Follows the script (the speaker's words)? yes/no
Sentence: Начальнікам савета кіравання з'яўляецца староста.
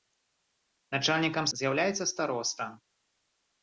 no